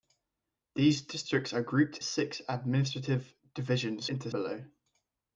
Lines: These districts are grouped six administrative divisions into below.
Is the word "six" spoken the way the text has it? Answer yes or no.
yes